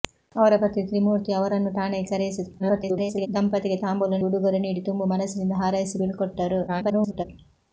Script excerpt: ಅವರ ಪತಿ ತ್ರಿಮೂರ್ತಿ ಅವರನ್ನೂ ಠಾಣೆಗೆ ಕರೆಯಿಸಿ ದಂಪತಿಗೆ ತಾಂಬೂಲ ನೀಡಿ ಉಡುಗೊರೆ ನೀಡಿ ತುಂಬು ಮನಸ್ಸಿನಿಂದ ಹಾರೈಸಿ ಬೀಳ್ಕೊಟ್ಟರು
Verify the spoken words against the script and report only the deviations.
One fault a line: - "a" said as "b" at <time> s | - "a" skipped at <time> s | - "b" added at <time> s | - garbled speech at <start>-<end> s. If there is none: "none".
- garbled speech at 2.6-3.3 s
- "ನೀಡಿ" skipped at 4.2 s
- garbled speech at 6.7-7.2 s